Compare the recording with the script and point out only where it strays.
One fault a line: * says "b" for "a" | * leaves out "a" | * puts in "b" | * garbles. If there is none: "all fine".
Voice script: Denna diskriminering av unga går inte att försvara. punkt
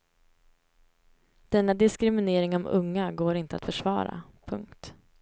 all fine